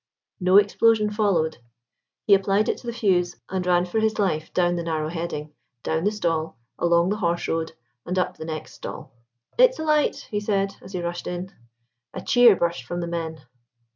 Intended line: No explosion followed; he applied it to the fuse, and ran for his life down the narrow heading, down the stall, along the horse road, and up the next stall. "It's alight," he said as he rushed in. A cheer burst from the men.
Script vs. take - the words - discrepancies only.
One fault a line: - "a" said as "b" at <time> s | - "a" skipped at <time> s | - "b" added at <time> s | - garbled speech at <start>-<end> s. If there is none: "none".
none